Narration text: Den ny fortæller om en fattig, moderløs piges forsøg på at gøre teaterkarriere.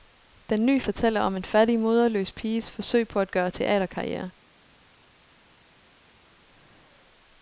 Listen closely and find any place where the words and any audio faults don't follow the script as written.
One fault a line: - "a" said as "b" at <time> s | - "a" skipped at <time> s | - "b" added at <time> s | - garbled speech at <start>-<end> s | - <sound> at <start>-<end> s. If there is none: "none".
none